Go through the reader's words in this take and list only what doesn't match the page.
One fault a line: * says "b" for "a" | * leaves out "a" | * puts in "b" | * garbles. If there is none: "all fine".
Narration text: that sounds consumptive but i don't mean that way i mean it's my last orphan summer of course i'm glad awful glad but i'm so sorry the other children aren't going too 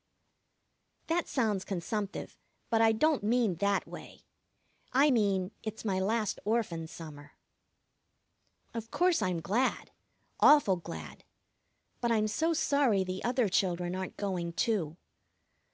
all fine